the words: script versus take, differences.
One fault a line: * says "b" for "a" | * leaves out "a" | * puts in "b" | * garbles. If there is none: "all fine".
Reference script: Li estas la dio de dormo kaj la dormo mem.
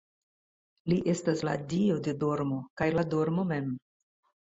all fine